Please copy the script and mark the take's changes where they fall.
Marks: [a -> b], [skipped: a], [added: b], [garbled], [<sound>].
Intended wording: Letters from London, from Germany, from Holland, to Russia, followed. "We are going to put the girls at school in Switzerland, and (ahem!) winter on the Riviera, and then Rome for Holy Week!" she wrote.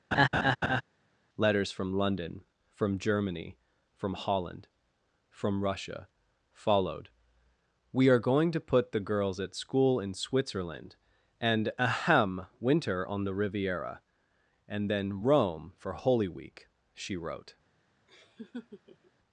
[laugh] Letters from London, from Germany, from Holland, [to -> from] Russia, followed. "We are going to put the girls at school in Switzerland, and (ahem!) winter on the Riviera, and then Rome for Holy Week!" she wrote. [laugh]